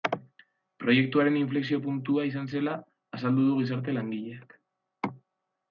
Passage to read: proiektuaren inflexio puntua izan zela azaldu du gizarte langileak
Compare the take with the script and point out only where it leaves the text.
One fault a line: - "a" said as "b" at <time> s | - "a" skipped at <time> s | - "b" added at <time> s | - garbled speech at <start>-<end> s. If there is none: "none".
none